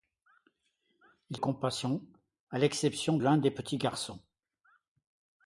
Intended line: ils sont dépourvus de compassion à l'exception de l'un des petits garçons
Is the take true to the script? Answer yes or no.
no